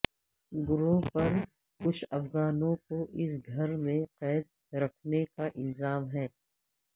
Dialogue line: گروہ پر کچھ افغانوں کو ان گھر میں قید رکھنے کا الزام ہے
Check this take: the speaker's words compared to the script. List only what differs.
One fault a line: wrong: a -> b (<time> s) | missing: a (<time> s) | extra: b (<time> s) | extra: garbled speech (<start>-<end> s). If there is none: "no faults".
wrong: ان -> اس (3.1 s)